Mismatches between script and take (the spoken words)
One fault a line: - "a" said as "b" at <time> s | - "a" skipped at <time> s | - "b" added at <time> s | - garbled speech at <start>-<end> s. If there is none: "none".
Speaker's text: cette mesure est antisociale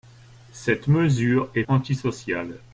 none